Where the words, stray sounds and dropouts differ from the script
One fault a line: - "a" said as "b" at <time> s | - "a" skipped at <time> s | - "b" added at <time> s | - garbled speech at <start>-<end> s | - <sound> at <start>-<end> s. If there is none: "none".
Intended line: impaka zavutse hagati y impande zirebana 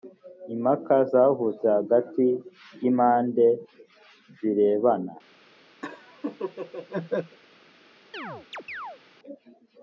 - laugh at 5.8-7.4 s
- chirp at 8.1-9.0 s